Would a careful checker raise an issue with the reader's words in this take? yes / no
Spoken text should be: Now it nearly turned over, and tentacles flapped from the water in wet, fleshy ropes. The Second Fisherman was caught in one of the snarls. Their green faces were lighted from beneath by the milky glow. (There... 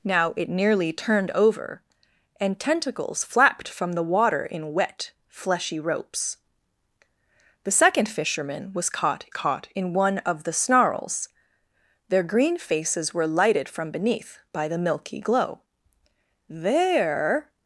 yes